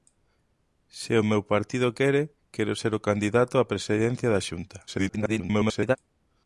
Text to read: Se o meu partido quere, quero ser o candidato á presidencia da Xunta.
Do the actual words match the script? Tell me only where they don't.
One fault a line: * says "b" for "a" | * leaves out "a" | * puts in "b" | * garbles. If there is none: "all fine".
* garbles